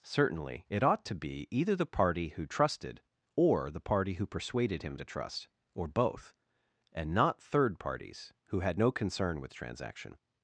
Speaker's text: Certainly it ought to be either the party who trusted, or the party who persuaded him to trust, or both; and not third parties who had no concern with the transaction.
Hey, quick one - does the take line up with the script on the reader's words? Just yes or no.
no